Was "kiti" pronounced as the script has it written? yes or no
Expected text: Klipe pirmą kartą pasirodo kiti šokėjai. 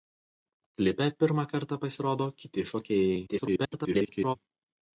yes